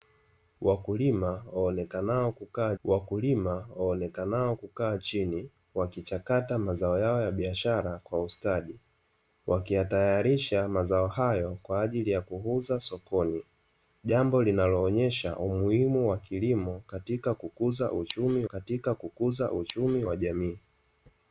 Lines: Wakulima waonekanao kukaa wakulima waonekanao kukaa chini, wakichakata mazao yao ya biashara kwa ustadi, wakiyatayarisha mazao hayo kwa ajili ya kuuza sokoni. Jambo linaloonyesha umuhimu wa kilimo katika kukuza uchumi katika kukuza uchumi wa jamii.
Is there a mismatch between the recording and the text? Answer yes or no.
no